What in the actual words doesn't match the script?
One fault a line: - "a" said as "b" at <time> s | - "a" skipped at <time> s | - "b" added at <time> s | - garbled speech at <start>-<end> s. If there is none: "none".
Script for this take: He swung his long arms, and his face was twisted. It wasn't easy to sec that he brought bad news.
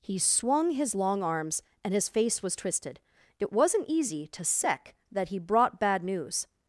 none